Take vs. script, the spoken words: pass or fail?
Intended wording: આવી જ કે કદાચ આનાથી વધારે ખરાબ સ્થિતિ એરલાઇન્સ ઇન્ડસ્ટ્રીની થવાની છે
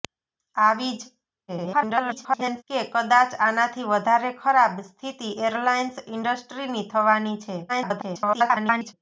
fail